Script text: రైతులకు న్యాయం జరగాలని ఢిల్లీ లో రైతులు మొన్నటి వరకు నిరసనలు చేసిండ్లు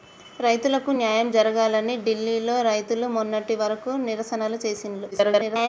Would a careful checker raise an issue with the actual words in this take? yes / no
yes